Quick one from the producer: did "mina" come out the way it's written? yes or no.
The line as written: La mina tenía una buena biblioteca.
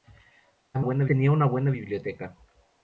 no